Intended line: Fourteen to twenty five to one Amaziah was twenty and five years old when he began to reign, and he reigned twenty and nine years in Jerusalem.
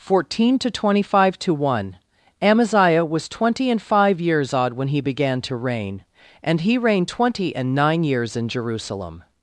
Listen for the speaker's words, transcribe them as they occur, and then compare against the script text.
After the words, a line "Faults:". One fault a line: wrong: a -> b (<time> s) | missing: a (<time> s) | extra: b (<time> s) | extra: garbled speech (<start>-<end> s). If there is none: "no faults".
Fourteen to twenty five to one Amaziah was twenty and five years odd when he began to reign, and he reigned twenty and nine years in Jerusalem.
Faults:
wrong: old -> odd (4.5 s)